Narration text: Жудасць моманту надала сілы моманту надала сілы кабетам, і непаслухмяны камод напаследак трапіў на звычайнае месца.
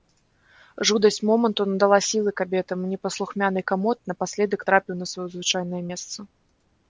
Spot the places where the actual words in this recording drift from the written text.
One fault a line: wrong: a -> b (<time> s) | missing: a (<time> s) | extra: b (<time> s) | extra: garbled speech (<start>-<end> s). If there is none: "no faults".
missing: моманту надала сілы (2.3 s)
extra: сваё (5.1 s)